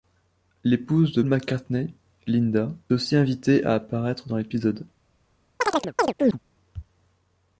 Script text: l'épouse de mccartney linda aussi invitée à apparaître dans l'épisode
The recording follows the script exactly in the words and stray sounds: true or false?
false